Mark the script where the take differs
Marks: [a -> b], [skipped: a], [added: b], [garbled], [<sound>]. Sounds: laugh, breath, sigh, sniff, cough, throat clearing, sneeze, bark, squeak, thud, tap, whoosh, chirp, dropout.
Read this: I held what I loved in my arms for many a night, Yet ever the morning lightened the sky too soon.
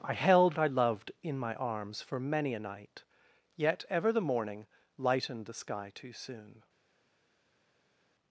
I held [skipped: what] I loved in my arms for many a night, Yet ever the morning lightened the sky too soon.